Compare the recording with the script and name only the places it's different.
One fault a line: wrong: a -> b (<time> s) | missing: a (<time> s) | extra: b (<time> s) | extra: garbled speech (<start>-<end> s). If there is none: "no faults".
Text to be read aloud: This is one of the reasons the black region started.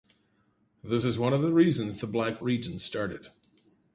no faults